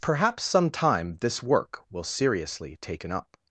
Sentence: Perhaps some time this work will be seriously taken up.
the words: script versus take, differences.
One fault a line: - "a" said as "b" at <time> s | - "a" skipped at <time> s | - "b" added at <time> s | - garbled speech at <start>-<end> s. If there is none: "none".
- "be" skipped at 2.0 s